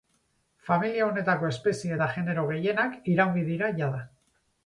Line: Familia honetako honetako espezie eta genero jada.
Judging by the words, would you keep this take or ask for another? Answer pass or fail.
fail